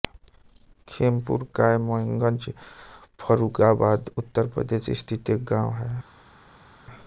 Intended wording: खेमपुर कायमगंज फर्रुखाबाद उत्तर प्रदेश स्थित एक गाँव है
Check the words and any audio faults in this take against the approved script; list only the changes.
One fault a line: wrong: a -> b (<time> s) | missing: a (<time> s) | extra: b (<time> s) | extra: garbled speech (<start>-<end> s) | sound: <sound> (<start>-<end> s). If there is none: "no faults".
no faults